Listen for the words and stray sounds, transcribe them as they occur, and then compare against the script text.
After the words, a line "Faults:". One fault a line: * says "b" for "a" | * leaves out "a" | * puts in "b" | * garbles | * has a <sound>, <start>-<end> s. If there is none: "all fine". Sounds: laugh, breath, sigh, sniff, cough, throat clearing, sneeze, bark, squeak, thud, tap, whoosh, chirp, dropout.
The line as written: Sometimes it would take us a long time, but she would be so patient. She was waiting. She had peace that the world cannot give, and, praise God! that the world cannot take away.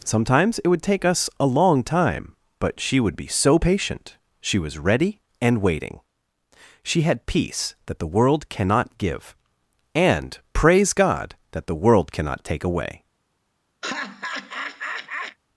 Sometimes it would take us a long time, but she would be so patient. She was ready and waiting. She had peace that the world cannot give, and, praise God! that the world cannot take away.
Faults:
* puts in "ready and"
* has a laugh, 13.8-15.4 s